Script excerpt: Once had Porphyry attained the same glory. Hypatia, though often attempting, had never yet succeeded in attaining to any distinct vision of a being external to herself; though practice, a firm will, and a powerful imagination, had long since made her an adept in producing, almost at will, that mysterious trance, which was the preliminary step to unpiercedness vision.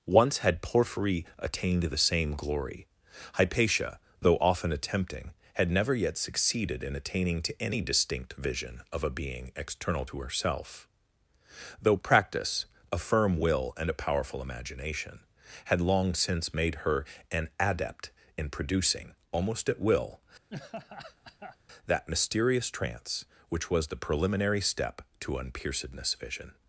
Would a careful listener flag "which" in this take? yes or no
no